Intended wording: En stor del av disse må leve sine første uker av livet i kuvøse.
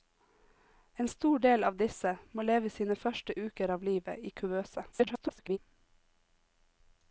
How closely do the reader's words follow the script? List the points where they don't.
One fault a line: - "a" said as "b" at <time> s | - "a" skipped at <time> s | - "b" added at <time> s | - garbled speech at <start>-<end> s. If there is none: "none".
- garbled speech at 4.9-5.6 s